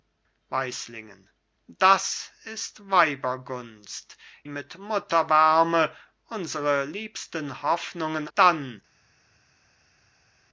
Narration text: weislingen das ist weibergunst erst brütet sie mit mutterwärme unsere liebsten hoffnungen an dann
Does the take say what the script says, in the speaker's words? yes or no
no